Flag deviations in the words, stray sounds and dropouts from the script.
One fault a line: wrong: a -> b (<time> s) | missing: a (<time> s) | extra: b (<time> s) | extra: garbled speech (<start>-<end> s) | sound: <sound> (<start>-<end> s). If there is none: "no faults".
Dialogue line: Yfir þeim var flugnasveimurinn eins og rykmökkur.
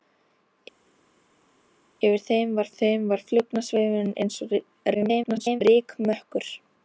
extra: þeim var (2.8 s)
extra: garbled speech (4.9-5.6 s)